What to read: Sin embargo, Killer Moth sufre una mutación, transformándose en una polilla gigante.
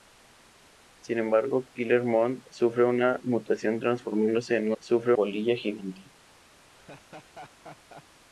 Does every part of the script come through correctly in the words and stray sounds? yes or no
no